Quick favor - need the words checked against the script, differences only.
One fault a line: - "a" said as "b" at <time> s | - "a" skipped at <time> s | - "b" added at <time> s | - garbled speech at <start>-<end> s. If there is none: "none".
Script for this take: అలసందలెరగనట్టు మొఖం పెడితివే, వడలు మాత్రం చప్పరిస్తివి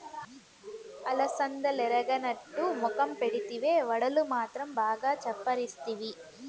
- "బాగా" added at 4.7 s